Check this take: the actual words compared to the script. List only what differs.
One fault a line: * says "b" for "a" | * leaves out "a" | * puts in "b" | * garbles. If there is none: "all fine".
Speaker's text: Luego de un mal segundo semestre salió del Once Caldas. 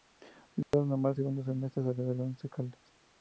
all fine